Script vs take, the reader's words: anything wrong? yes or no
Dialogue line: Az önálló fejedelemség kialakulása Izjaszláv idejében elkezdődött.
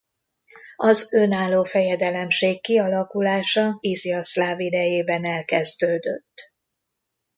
no